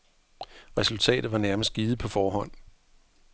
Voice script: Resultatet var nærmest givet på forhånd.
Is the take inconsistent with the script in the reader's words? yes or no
no